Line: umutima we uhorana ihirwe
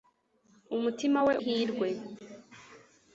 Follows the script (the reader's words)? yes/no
no